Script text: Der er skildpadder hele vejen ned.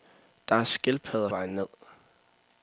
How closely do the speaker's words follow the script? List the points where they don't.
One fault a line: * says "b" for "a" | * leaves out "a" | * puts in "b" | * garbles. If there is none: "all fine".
* leaves out "hele"